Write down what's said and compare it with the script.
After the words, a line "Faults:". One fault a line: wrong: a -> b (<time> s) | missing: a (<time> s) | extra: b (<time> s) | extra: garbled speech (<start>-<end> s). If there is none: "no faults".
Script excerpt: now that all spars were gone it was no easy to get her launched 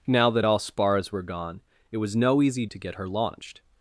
now that all spars were gone it was no easy to get her launched
Faults:
no faults